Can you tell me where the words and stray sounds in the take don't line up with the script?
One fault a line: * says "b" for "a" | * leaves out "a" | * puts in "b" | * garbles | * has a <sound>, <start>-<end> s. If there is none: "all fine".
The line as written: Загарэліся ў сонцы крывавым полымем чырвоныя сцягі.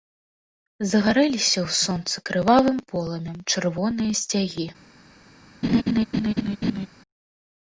* has a laugh, 5.6-6.9 s